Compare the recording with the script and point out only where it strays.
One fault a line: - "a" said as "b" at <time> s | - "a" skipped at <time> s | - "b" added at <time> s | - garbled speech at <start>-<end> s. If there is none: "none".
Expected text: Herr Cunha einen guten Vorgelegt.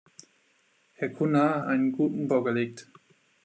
none